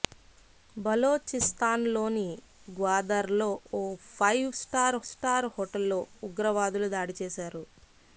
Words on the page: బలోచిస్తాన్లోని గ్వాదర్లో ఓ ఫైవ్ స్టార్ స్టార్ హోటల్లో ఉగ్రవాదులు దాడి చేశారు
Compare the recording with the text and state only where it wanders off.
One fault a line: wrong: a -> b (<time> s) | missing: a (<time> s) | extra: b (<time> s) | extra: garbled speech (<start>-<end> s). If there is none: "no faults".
no faults